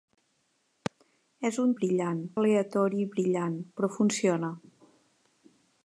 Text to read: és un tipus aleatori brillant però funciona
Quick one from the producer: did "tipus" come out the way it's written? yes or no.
no